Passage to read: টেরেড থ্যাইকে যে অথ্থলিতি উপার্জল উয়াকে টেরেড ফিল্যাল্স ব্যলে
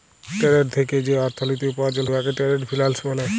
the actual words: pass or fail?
pass